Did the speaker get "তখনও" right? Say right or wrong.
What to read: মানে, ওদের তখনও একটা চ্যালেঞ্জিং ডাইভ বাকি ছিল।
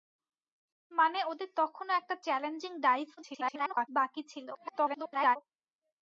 right